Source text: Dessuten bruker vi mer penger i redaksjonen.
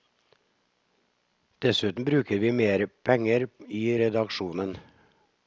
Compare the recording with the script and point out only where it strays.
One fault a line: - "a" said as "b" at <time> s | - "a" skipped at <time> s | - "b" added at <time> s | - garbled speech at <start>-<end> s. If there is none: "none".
none